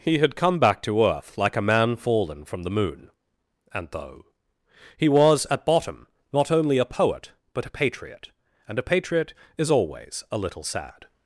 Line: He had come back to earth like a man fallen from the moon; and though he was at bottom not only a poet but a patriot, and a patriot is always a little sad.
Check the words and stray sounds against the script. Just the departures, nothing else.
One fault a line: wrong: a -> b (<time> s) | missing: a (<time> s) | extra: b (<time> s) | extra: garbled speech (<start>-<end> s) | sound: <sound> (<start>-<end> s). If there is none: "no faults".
no faults